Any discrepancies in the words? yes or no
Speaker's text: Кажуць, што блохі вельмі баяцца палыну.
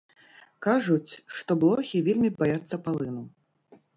no